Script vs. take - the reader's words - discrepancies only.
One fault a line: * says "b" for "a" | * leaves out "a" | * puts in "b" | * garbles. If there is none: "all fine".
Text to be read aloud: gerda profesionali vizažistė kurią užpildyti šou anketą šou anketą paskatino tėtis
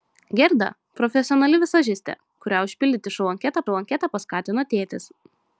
all fine